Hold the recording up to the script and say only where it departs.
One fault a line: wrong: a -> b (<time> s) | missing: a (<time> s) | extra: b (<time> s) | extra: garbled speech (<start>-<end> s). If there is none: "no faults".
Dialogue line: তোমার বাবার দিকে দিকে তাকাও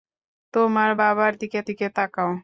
no faults